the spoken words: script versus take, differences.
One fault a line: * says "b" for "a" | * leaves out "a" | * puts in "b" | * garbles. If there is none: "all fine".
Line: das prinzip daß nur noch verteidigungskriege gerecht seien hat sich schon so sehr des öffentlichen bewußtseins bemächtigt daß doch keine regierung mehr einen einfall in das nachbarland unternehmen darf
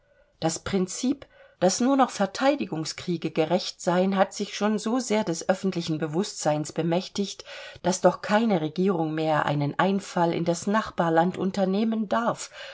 all fine